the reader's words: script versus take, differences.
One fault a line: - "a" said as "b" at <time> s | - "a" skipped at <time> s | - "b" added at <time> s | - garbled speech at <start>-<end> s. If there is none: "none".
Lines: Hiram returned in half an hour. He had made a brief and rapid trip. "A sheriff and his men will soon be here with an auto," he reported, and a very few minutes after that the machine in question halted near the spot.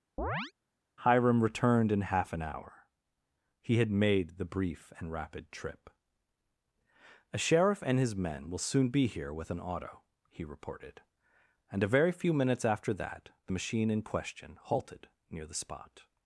- "a" said as "the" at 4.4 s